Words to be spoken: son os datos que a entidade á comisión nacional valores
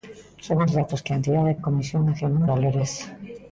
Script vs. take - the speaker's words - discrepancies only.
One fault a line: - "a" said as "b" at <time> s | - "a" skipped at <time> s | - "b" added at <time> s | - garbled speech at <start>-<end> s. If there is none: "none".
none